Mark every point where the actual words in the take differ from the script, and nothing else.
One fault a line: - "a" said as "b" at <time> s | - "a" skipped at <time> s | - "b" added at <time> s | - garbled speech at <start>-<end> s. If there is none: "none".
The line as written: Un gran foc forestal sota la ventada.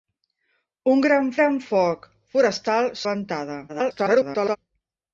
- "gran" added at 1.4 s
- "sota" skipped at 2.9 s
- garbled speech at 3.7-4.6 s